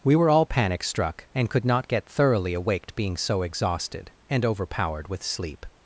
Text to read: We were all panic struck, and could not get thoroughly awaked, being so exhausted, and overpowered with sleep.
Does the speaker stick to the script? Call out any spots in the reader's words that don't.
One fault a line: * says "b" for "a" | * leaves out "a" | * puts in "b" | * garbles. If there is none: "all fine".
all fine